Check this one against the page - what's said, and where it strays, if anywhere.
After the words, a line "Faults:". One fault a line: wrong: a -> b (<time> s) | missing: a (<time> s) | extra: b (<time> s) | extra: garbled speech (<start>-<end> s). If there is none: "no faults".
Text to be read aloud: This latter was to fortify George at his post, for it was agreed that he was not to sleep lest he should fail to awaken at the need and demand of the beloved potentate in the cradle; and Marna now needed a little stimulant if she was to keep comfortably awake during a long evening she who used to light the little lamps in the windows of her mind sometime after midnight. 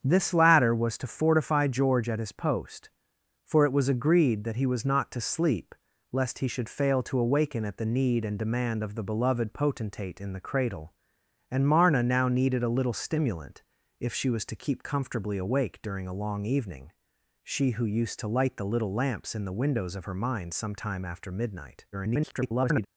This latter was to fortify George at his post, for it was agreed that he was not to sleep lest he should fail to awaken at the need and demand of the beloved potentate in the cradle; and Marna now needed a little stimulant if she was to keep comfortably awake during a long evening she who used to light the little lamps in the windows of her mind sometime after midnight. [garbled]
Faults:
extra: garbled speech (21.9-22.9 s)